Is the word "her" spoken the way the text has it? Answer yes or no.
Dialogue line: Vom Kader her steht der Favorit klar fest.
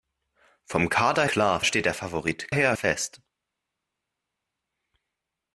no